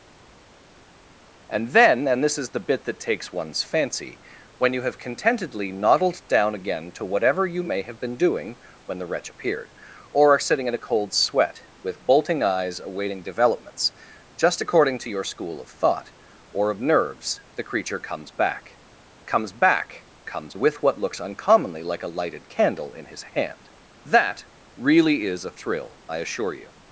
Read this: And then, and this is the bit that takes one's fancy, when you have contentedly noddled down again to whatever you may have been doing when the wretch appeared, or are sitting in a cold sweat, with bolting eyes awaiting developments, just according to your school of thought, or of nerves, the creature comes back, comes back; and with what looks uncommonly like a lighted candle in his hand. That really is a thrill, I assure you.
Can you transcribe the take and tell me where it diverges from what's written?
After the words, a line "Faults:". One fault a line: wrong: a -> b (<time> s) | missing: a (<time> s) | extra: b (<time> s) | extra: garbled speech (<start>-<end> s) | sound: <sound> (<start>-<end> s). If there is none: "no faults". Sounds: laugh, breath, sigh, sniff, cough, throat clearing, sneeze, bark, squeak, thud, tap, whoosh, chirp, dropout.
And then, and this is the bit that takes one's fancy, when you have contentedly noddled down again to whatever you may have been doing when the wretch appeared, or are sitting in a cold sweat, with bolting eyes awaiting developments, just according to your school of thought, or of nerves, the creature comes back, comes back; comes with what looks uncommonly like a lighted candle in his hand. That really is a thrill, I assure you.
Faults:
wrong: and -> comes (20.2 s)